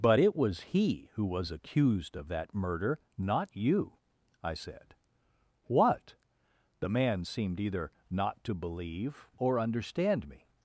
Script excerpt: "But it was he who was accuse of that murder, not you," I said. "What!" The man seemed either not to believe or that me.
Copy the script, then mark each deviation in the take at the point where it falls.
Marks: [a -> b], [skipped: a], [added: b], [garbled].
"But it was he who was [accuse -> accused] of that murder, not you," I said. "What!" The man seemed either not to believe or [that -> understand] me.